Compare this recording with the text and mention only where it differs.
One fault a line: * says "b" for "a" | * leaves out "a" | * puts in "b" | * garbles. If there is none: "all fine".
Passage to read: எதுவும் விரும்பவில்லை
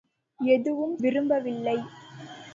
all fine